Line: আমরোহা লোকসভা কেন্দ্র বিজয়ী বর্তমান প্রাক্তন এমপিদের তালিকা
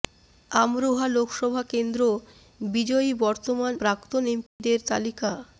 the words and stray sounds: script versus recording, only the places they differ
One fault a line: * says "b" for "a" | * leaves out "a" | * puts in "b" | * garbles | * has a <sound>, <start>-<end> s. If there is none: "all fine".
* has a dropout, 4.5-4.6 s